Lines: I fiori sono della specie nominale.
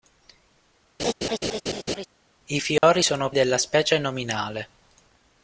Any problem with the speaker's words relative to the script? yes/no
no